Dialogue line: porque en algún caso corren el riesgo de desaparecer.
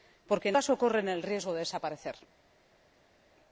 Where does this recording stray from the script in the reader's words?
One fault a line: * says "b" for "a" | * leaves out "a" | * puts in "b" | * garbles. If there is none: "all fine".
* leaves out "algún"